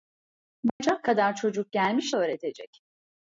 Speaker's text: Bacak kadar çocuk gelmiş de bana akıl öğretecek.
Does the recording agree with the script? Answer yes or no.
no